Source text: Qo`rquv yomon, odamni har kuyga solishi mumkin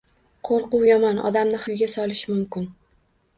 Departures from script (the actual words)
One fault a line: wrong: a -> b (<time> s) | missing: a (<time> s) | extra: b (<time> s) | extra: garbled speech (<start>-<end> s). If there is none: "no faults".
missing: har (1.6 s)